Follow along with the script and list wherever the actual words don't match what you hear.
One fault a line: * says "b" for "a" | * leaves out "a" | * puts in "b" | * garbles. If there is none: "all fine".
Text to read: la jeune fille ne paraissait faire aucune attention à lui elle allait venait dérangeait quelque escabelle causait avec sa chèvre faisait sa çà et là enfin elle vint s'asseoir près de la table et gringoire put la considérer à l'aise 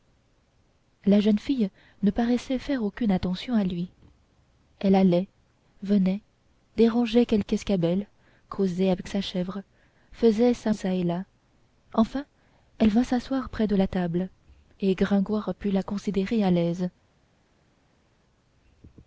all fine